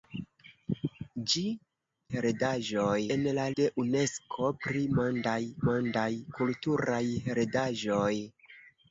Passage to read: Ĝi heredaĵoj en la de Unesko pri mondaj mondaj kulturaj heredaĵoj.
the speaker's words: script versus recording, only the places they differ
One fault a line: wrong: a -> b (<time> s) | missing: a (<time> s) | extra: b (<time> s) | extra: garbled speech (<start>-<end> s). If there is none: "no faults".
no faults